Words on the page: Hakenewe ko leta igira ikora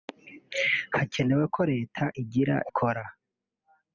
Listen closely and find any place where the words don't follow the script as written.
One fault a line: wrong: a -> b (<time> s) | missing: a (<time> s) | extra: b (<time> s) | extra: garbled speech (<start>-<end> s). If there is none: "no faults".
no faults